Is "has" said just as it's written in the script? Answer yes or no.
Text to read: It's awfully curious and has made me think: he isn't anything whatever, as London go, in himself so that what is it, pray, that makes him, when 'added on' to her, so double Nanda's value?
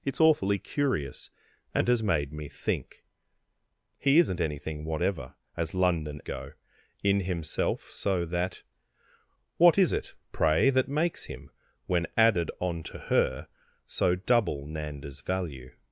yes